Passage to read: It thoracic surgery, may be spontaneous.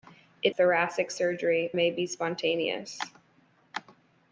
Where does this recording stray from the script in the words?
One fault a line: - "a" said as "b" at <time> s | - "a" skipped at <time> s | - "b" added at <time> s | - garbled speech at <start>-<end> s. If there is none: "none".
none